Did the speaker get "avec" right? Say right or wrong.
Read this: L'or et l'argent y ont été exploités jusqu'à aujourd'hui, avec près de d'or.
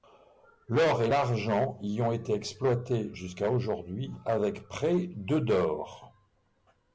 right